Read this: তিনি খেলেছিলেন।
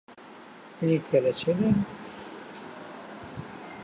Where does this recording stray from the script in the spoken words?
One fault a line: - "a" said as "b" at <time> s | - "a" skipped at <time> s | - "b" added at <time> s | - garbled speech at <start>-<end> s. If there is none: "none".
none